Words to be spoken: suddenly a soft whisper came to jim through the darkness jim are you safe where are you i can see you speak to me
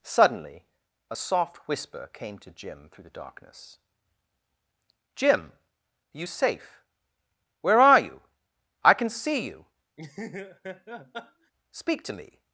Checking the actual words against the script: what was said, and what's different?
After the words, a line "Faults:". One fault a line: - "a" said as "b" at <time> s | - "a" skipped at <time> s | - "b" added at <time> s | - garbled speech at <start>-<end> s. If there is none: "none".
suddenly a soft whisper came to jim through the darkness jim are you safe where are you i can see you speak to me
Faults:
none